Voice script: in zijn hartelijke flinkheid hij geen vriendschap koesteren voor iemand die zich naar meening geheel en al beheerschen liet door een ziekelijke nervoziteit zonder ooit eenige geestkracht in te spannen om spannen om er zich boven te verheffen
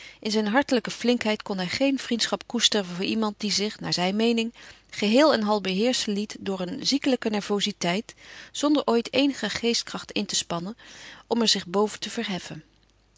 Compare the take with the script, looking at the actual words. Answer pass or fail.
fail